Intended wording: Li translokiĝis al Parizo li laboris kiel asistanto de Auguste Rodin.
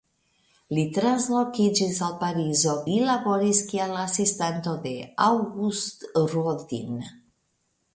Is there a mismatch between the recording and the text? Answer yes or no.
no